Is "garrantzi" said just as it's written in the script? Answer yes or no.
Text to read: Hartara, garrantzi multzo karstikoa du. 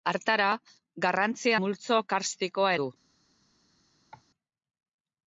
yes